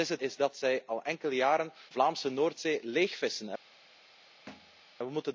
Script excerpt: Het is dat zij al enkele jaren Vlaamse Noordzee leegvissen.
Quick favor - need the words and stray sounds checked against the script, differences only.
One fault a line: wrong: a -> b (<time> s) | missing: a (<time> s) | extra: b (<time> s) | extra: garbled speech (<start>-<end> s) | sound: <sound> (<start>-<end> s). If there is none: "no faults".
sound: thud (4.5-4.8 s)